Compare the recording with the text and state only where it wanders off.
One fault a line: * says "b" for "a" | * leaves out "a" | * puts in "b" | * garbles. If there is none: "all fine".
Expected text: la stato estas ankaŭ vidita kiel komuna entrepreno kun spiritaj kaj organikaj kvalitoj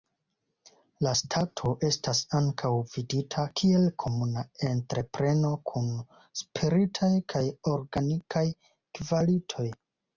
all fine